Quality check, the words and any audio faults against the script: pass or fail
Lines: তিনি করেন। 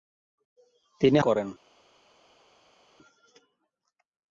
pass